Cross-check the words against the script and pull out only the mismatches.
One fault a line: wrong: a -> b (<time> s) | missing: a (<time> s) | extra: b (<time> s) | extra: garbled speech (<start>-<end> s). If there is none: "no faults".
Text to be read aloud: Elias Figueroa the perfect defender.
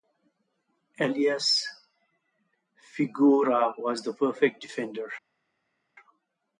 extra: was (3.8 s)